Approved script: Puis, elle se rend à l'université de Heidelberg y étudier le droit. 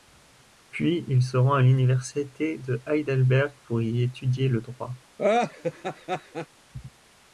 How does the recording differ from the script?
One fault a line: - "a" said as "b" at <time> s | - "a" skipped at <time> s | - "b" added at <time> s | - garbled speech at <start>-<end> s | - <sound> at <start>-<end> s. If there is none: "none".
- "elle" said as "il" at 1.1 s
- "pour" added at 3.6 s
- laugh at 5.2-6.5 s